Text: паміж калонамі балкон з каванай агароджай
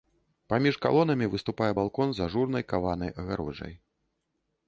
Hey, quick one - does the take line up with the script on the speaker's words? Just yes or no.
no